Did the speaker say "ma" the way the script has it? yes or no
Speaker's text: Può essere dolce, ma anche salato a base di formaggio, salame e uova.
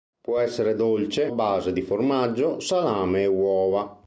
no